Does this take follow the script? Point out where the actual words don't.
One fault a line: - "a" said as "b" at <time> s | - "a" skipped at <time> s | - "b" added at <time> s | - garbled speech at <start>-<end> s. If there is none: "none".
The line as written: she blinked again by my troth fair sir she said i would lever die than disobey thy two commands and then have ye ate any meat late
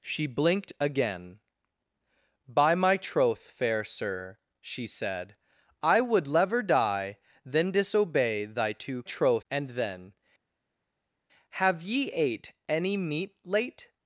- "commands" said as "troth" at 9.0 s